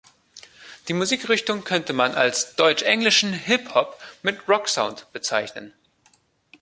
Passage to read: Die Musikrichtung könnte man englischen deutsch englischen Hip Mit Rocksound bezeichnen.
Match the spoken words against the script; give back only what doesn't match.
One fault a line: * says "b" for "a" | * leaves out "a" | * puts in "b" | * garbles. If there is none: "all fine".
* says "als" for "englischen"
* puts in "Hop"